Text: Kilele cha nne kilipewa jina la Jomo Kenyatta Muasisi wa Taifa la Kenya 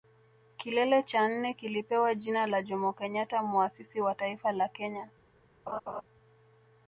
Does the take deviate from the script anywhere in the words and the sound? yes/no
yes